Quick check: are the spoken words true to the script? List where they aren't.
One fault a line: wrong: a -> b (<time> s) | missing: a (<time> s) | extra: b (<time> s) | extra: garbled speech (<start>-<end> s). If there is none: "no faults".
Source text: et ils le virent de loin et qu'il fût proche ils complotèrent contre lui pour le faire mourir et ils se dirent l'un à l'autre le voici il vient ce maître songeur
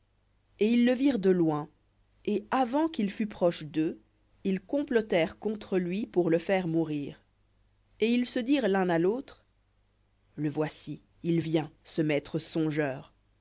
extra: avant (2.5 s)
extra: d'eux (3.6 s)